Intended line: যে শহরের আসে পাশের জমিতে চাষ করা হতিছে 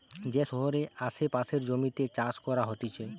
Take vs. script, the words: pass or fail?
pass